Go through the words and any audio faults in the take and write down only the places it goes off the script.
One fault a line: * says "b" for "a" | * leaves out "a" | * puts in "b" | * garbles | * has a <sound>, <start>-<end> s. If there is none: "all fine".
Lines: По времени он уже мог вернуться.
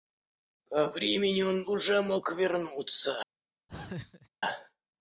* has a laugh, 3.7-4.3 s